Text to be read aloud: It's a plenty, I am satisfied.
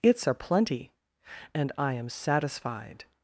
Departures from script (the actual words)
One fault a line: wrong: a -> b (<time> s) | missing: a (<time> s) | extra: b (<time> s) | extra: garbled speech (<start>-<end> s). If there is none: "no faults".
extra: and (1.5 s)